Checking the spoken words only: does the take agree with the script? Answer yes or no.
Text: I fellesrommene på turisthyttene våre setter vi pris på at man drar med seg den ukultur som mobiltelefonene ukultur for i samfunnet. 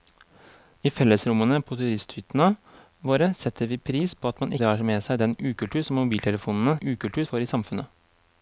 yes